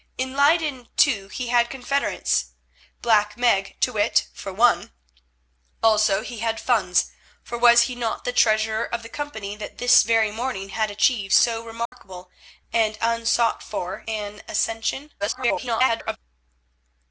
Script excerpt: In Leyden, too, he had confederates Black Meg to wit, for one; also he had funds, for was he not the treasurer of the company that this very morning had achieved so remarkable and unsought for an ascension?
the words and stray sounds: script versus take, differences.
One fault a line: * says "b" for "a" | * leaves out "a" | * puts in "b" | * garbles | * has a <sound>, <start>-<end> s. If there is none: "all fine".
* has a dropout, 11.9-11.9 s
* garbles